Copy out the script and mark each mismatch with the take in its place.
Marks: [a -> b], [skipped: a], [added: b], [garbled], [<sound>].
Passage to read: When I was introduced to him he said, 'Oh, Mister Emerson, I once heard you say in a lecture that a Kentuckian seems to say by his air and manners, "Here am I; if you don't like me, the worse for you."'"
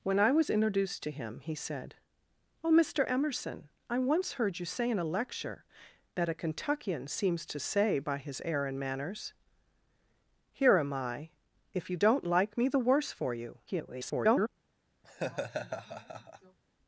When I was introduced to him he said, 'Oh, Mister Emerson, I once heard you say in a lecture that a Kentuckian seems to say by his air and manners, "Here am I; if you don't like me, the worse for you."'" [garbled] [laugh]